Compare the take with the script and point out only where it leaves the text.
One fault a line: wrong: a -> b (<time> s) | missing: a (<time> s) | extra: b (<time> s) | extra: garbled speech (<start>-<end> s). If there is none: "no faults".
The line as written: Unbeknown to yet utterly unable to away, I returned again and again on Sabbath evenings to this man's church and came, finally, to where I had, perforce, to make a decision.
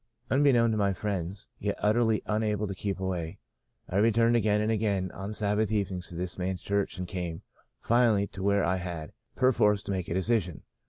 extra: my friends (0.8 s)
extra: keep (2.7 s)